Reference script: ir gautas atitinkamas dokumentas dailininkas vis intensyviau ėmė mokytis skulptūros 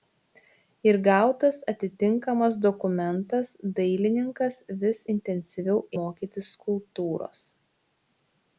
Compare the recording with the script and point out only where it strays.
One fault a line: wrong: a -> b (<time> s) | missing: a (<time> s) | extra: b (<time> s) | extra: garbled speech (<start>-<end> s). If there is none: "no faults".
missing: ėmė (5.8 s)